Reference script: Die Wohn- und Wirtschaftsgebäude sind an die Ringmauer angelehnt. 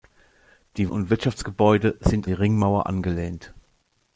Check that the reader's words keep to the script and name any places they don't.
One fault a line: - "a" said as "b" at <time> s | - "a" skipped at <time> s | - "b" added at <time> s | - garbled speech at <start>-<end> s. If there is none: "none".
- "Wohn" skipped at 0.9 s
- "an" skipped at 2.3 s